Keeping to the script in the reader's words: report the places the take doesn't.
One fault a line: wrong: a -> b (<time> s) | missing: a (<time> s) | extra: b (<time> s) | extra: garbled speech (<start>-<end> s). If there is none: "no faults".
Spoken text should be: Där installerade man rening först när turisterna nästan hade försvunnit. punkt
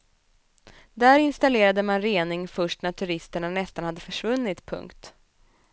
no faults